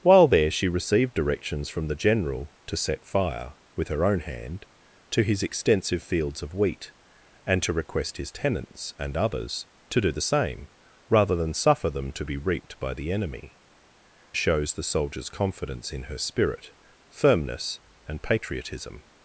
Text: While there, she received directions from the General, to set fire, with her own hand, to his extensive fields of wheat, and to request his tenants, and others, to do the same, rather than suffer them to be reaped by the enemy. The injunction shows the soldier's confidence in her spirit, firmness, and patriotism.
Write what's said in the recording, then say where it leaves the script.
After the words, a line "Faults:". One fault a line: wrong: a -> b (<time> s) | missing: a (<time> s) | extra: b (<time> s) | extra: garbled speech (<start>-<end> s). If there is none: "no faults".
While there, she received directions from the General, to set fire, with her own hand, to his extensive fields of wheat, and to request his tenants, and others, to do the same, rather than suffer them to be reaped by the enemy. Shows the soldier's confidence in her spirit, firmness, and patriotism.
Faults:
missing: The injunction (13.6 s)